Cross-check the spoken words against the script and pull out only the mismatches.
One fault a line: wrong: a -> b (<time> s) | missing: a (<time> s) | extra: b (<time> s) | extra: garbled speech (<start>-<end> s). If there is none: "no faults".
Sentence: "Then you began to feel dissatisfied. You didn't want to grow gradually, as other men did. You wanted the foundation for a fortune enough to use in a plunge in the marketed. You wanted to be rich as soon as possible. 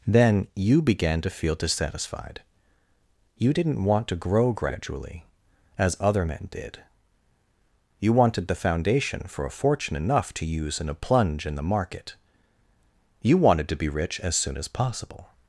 wrong: marketed -> market (11.6 s)